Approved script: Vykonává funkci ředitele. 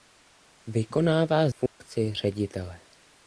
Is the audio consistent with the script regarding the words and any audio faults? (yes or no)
no